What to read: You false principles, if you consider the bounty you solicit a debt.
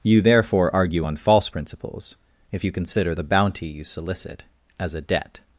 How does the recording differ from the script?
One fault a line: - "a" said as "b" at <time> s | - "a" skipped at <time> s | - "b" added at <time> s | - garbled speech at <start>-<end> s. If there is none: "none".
- "therefore argue on" added at 0.2 s
- "as" added at 4.8 s